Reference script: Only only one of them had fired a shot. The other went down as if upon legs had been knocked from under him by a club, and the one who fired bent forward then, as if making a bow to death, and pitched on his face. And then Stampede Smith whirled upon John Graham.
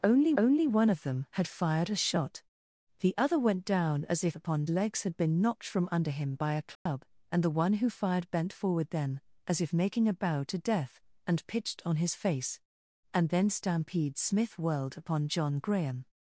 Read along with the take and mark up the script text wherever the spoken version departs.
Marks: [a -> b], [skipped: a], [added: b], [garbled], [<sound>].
Only only one of them had fired a shot. The other went down as if upon legs had been knocked from under him by a club, [dropout] and the one who fired bent forward then, as if making a bow to death, and pitched on his face. And then Stampede Smith whirled upon John Graham.